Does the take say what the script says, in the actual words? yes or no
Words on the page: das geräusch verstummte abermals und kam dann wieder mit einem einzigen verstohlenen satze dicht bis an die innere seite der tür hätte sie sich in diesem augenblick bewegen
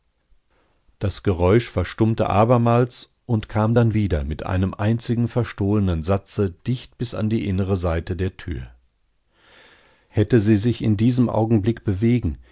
yes